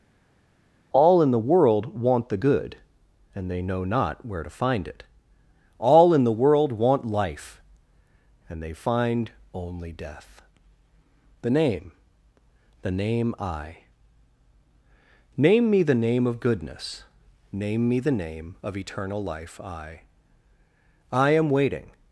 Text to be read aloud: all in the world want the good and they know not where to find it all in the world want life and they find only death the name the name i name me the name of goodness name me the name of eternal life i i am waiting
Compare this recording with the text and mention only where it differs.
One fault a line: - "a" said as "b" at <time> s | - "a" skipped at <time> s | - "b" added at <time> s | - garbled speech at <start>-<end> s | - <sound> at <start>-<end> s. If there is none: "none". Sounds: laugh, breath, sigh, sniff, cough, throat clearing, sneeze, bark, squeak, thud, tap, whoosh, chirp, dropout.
none